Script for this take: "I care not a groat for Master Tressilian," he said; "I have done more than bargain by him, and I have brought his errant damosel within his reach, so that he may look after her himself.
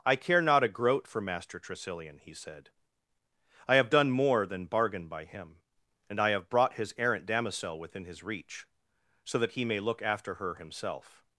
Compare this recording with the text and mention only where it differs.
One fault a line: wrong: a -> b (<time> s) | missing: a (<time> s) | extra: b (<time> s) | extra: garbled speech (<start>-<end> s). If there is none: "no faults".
no faults